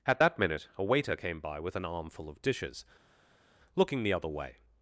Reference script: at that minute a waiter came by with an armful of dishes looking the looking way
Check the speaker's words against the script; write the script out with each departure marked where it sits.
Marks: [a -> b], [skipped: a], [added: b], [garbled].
at that minute a waiter came by with an armful of dishes looking the [looking -> other] way